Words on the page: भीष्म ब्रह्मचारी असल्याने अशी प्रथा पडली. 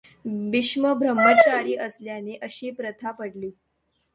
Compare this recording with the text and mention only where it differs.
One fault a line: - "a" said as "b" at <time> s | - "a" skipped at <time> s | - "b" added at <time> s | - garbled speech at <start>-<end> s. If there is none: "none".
none